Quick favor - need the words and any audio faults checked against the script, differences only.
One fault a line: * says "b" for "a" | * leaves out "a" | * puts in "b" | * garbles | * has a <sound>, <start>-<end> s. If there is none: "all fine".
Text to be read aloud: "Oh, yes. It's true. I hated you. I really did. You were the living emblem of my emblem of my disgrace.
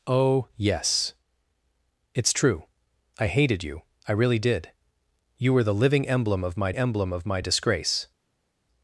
all fine